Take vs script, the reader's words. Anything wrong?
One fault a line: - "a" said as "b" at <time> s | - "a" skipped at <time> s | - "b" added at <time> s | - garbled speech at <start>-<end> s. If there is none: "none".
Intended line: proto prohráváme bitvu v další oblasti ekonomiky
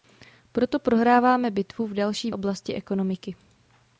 none